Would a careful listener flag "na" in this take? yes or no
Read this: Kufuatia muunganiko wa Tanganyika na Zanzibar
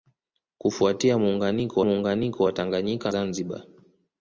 yes